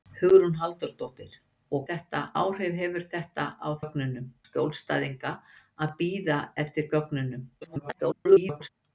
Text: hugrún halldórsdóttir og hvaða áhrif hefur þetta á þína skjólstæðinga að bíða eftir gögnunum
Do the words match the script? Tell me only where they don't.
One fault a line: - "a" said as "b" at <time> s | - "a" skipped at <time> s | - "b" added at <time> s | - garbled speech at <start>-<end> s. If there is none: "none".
- "hvaða" said as "þetta" at 1.9 s
- "þína" said as "gögnunum" at 3.8 s
- garbled speech at 7.6-8.7 s